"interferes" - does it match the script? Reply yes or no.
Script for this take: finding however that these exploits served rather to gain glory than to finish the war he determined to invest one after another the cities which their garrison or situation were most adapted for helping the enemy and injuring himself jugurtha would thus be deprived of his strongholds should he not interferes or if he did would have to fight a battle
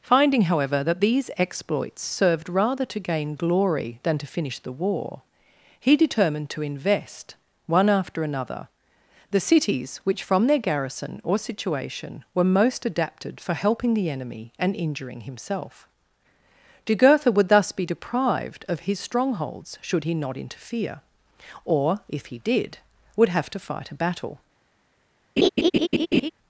no